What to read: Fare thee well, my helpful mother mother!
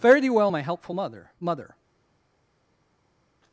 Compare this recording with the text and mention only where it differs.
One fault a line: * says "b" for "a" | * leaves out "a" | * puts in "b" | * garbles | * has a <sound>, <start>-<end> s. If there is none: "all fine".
all fine